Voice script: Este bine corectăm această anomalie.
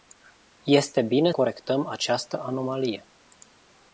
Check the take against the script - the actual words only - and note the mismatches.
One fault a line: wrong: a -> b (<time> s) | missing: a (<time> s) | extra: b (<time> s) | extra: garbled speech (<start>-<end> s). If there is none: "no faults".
no faults